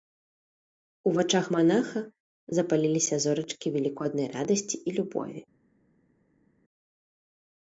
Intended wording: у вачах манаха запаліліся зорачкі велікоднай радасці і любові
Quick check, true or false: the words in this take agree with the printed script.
true